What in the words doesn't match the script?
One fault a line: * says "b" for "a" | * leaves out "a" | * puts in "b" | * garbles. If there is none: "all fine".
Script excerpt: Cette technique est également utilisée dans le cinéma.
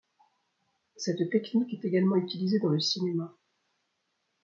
all fine